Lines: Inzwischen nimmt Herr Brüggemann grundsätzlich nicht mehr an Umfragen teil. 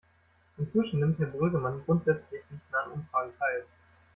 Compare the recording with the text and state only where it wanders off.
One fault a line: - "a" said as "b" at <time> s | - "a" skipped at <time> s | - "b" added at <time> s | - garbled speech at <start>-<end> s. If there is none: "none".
none